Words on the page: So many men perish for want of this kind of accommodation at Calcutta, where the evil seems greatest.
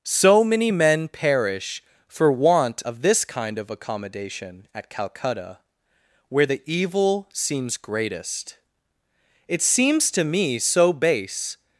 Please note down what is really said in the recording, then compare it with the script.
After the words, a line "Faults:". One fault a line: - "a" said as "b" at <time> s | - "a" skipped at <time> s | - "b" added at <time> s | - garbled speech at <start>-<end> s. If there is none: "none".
So many men perish for want of this kind of accommodation at Calcutta, where the evil seems greatest. It seems to me so base
Faults:
- "It seems to me so base" added at 9.5 s